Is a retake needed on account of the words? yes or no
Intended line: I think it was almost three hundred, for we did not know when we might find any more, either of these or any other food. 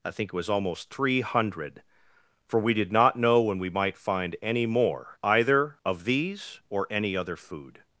no